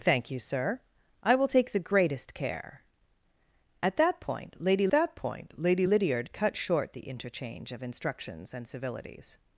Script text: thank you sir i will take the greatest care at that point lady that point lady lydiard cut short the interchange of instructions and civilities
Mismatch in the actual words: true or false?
false